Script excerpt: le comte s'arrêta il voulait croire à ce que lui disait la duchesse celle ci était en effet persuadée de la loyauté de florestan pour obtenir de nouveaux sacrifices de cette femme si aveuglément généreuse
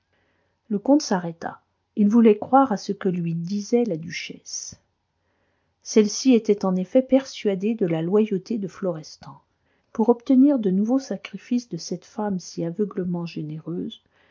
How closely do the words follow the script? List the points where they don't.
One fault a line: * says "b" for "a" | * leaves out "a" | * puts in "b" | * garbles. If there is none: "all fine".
all fine